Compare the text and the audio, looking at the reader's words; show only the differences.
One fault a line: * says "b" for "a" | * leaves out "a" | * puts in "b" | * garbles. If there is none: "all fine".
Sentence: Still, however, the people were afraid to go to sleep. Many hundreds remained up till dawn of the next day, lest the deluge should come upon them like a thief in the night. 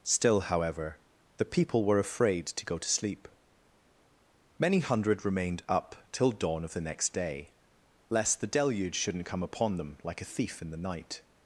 * says "hundred" for "hundreds"
* says "shouldn't" for "should"